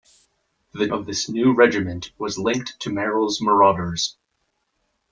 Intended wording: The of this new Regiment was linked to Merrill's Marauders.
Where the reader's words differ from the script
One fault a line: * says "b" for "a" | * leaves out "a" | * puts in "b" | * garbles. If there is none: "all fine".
all fine